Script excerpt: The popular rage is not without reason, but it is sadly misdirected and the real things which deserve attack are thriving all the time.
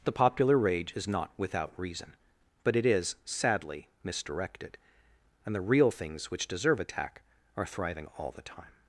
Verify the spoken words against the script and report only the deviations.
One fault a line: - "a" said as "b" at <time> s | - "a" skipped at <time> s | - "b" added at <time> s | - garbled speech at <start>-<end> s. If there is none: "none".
none